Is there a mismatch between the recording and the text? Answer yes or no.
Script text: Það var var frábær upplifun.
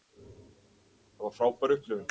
yes